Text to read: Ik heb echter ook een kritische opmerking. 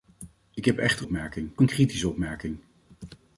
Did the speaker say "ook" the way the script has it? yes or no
no